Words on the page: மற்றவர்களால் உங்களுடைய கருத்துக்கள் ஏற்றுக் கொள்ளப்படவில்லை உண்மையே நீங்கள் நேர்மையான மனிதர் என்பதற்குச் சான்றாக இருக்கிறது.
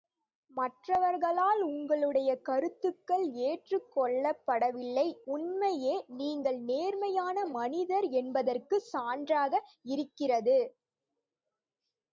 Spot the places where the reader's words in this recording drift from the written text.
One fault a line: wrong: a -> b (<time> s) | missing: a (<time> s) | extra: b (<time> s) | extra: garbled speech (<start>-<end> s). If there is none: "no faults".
no faults